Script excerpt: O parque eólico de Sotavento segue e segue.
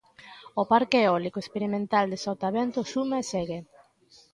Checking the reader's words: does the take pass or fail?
fail